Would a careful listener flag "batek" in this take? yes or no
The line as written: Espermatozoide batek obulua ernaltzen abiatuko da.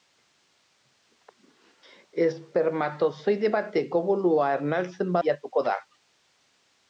no